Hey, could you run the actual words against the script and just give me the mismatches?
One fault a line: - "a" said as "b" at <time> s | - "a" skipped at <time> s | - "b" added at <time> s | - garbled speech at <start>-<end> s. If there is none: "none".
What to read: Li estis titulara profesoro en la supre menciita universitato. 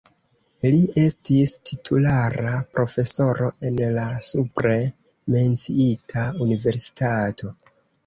none